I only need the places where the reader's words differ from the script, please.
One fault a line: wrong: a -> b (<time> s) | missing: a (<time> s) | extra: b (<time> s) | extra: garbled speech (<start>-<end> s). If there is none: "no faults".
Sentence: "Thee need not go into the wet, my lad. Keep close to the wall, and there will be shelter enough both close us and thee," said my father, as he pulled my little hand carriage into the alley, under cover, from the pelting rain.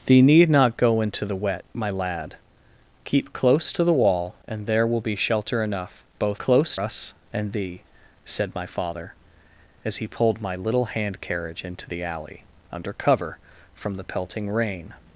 no faults